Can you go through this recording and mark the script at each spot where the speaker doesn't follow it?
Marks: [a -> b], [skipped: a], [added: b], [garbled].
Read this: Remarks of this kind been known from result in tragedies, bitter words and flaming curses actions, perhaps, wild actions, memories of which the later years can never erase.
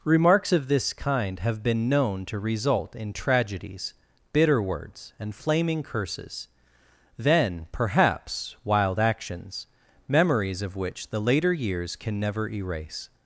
Remarks of this kind [added: have] been known [from -> to] result in tragedies, bitter words and flaming curses [actions, -> then] perhaps, wild actions, memories of which the later years can never erase.